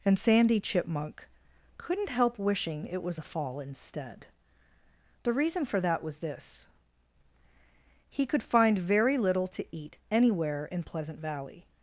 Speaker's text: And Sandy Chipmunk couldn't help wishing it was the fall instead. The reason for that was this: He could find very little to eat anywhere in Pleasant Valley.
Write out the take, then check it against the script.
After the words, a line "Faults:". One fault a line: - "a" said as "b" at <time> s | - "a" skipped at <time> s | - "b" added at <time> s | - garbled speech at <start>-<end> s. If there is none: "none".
And Sandy Chipmunk couldn't help wishing it was the fall instead. The reason for that was this: He could find very little to eat anywhere in Pleasant Valley.
Faults:
none